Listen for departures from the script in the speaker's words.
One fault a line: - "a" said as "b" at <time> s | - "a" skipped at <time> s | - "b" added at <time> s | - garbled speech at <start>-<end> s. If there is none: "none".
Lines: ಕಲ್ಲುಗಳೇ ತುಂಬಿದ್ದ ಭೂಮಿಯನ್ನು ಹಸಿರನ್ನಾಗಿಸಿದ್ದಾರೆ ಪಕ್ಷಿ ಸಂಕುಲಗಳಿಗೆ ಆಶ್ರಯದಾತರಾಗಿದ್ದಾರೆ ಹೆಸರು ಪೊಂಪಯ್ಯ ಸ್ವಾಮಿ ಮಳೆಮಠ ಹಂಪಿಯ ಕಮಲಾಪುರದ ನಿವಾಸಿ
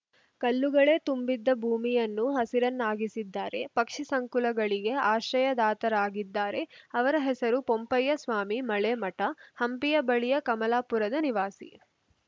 - "ಅವರ" added at 6.9 s
- "ಬಳಿಯ" added at 10.1 s